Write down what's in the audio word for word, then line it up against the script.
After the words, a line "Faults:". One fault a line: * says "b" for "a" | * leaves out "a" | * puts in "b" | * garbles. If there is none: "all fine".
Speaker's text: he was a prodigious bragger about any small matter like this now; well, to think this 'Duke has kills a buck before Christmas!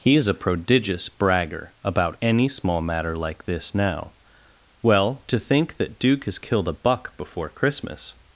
he is a prodigious bragger about any small matter like this now; well, to think that 'Duke has killed a buck before Christmas!
Faults:
* says "is" for "was"
* says "that" for "this"
* says "killed" for "kills"